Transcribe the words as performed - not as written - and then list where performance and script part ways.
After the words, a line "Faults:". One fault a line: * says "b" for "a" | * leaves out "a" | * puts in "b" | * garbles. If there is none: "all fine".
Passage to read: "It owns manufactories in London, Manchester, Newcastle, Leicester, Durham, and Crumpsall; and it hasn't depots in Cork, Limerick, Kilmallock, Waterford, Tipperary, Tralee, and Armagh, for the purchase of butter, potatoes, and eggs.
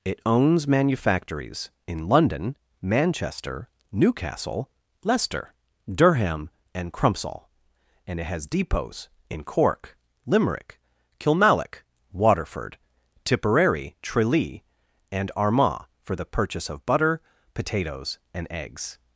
"It owns manufactories in London, Manchester, Newcastle, Leicester, Durham, and Crumpsall; and it has depots in Cork, Limerick, Kilmallock, Waterford, Tipperary, Tralee, and Armagh, for the purchase of butter, potatoes, and eggs.
Faults:
* says "has" for "hasn't"